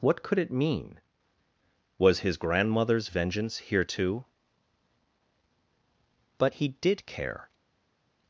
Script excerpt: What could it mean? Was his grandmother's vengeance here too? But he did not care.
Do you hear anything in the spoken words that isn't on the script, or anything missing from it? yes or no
yes